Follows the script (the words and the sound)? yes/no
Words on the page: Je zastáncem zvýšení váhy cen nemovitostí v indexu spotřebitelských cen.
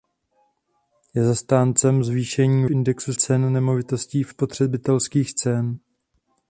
no